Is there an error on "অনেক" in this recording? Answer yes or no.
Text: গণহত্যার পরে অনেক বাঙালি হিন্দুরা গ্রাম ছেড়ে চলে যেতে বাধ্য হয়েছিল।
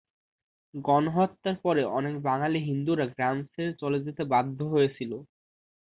no